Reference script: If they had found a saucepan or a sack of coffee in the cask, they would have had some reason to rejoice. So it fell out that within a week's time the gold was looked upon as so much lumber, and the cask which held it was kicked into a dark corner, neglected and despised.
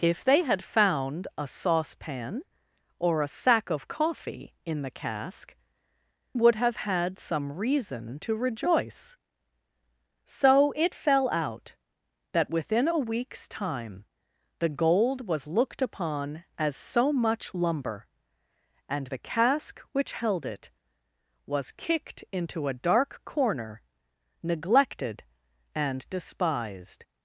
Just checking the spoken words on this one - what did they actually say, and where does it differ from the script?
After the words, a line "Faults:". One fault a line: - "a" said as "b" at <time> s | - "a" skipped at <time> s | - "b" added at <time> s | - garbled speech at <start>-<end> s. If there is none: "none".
If they had found a saucepan or a sack of coffee in the cask, would have had some reason to rejoice. So it fell out that within a week's time the gold was looked upon as so much lumber, and the cask which held it was kicked into a dark corner, neglected and despised.
Faults:
- "they" skipped at 5.5 s